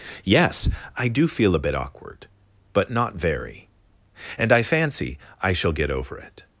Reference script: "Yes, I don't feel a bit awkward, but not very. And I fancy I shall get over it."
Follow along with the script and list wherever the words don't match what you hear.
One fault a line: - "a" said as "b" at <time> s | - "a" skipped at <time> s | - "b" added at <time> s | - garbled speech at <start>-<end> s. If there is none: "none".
- "don't" said as "do" at 1.1 s